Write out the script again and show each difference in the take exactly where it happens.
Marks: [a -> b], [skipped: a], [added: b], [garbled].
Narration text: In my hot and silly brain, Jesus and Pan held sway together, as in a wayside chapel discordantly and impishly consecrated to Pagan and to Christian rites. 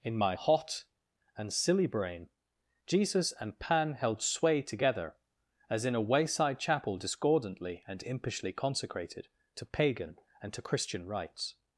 In my hot and silly brain, Jesus and Pan held sway together, as in a wayside chapel discordantly and impishly consecrated to Pagan and to Christian rites.